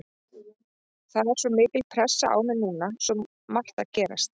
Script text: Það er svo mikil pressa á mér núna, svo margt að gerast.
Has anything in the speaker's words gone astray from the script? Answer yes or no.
no